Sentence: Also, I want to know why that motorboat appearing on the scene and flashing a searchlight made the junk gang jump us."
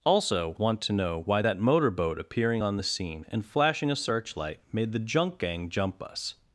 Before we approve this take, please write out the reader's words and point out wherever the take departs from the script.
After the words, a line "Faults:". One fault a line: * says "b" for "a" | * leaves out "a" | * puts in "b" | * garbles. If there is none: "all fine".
Also, want to know why that motorboat appearing on the scene and flashing a searchlight made the junk gang jump us."
Faults:
* leaves out "I"